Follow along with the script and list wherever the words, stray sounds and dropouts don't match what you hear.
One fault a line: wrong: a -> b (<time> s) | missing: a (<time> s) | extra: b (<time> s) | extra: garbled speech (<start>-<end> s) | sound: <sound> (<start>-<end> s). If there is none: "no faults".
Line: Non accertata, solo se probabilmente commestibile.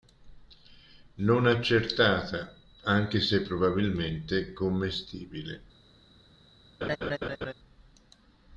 wrong: solo -> anche (2.9 s)
sound: laugh (6.8-7.5 s)